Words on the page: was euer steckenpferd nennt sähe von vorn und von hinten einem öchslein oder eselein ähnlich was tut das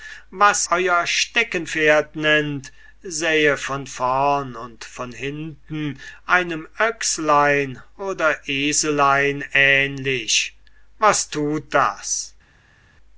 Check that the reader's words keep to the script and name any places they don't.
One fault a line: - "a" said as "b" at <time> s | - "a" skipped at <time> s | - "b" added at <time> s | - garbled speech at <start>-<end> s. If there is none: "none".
none